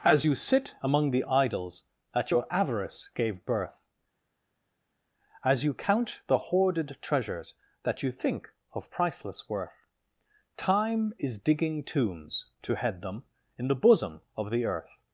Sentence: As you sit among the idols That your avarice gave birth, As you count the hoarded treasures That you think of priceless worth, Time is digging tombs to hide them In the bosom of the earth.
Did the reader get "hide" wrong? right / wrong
wrong